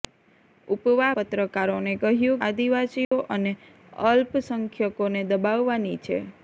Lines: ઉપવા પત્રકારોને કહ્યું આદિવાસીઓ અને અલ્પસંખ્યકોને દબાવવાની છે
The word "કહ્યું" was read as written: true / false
true